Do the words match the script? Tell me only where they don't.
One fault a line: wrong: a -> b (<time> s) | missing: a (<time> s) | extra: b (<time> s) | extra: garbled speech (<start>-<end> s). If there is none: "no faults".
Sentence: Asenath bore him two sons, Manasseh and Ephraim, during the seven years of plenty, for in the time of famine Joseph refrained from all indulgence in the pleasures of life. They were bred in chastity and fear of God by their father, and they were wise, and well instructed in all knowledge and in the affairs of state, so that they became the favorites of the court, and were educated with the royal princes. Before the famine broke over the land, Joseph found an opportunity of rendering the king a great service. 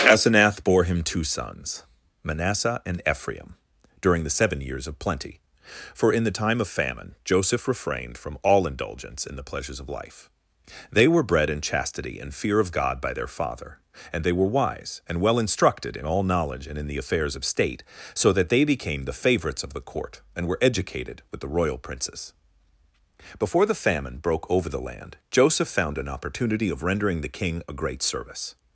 no faults